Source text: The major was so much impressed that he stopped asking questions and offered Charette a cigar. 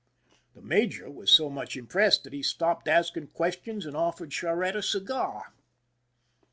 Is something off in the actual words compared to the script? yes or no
no